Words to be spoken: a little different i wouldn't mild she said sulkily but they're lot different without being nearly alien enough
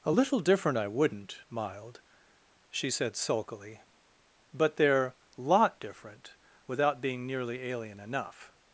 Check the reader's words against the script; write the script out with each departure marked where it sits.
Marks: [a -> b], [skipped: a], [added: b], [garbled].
a little different i wouldn't mild she said sulkily but they're lot different without being nearly alien enough